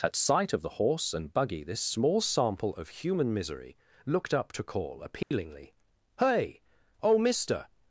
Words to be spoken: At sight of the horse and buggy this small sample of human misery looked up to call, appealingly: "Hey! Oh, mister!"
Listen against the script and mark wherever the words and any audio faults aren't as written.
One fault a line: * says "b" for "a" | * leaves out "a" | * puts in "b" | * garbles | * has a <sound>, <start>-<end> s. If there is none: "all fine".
* has a dropout, 5.2-5.3 s